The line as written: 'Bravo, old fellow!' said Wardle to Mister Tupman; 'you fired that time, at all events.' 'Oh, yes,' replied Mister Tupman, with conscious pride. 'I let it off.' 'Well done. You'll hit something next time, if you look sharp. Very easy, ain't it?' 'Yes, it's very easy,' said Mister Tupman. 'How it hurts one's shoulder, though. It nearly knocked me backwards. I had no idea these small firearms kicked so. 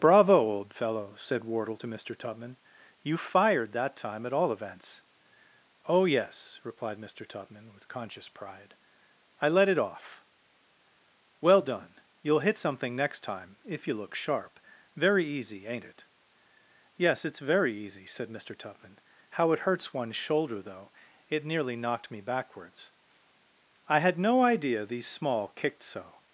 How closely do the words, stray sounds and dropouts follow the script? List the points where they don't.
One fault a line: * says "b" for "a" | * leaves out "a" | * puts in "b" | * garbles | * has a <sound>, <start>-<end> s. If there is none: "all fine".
* leaves out "firearms"